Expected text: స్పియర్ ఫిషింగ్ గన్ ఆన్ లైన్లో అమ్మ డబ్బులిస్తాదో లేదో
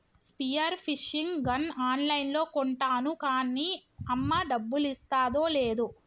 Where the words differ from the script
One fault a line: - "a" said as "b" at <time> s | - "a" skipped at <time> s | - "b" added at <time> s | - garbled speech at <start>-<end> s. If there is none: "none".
- "కొంటాను కాన్నీ" added at 2.5 s